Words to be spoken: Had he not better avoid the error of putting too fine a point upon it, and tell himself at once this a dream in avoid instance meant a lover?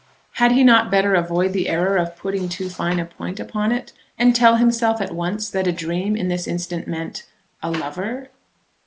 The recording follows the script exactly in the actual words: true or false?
false